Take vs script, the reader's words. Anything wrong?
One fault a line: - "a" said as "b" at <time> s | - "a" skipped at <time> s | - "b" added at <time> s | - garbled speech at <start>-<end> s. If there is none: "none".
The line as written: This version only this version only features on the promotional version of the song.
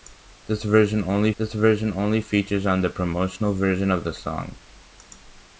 none